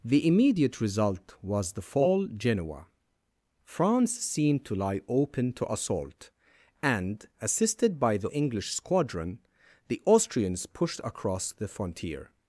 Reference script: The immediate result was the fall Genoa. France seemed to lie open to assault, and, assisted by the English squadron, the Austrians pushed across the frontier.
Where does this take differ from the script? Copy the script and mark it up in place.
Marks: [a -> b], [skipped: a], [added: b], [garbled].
The immediate result was the fall Genoa. France seemed to lie open to assault, and, assisted by the English squadron, the Austrians pushed across the frontier.